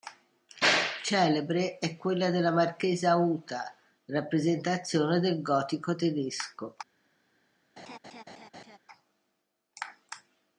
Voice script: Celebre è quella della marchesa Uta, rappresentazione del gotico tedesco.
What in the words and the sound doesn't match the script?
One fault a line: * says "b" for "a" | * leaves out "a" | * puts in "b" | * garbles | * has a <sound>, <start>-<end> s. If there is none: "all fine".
* has a laugh, 7.8-8.8 s